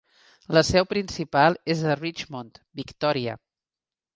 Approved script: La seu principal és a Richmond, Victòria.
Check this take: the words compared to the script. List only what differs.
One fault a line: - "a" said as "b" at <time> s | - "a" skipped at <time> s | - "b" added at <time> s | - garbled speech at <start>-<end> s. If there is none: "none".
none